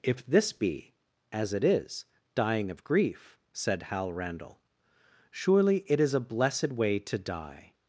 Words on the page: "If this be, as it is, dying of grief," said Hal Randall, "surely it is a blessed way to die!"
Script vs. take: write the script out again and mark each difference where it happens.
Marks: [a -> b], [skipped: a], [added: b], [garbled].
"If this be, as it is, dying of grief," said Hal Randall, "surely it is a blessed way to die!"